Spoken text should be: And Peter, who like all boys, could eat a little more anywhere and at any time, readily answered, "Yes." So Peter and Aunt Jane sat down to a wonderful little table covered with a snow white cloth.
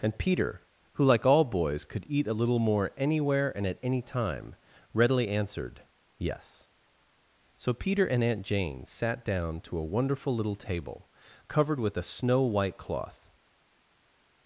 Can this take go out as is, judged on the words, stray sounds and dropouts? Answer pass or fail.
pass